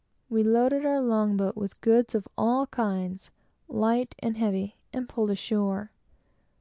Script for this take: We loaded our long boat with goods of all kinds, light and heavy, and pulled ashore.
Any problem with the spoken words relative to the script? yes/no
no